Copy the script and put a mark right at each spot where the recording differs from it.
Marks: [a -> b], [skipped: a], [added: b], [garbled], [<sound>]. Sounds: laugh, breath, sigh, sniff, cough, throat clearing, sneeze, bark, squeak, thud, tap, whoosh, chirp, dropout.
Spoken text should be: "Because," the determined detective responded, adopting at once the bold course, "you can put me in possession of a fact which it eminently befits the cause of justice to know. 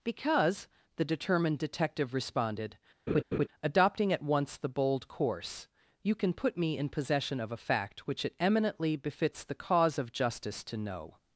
"Because," the determined detective responded, [laugh] adopting at once the bold course, "you can put me in possession of a fact which it eminently befits the cause of justice to know.